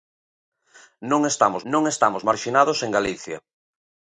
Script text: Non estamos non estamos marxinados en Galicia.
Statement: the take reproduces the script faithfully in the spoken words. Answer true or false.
true